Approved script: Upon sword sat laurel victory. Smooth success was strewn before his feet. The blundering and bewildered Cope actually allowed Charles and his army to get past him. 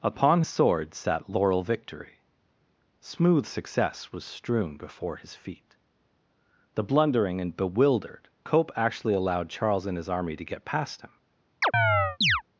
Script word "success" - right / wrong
right